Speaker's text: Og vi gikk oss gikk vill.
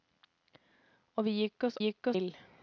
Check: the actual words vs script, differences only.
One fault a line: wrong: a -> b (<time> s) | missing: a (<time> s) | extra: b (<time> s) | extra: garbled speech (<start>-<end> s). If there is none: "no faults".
no faults